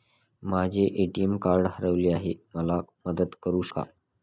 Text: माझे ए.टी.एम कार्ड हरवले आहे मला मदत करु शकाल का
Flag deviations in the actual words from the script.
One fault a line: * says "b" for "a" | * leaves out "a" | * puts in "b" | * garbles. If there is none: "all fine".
* leaves out "शकाल"